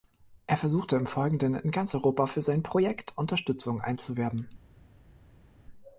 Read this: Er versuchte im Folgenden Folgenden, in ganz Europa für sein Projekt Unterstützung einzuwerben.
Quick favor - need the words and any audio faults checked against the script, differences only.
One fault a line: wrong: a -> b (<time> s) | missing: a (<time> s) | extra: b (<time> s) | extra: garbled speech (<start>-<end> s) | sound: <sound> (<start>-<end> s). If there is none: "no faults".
missing: Folgenden (1.5 s)